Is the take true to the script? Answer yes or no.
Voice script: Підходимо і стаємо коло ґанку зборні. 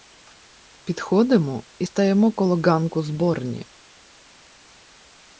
yes